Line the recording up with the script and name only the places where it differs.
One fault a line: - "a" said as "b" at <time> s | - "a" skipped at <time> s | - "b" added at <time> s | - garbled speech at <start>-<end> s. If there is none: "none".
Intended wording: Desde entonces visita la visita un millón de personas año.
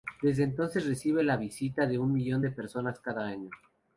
- "visita" said as "recibe" at 0.9 s
- "de" added at 1.9 s
- "cada" added at 3.0 s